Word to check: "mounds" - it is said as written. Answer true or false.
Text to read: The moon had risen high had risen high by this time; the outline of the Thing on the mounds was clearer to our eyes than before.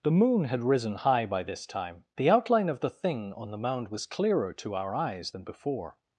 false